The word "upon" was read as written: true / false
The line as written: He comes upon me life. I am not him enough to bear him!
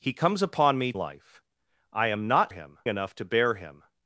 true